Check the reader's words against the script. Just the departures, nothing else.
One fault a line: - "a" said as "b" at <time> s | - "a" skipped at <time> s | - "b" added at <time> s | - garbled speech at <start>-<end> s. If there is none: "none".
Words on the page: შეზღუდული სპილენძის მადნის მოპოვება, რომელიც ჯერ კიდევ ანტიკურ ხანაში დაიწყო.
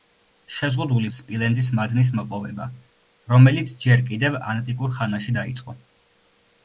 none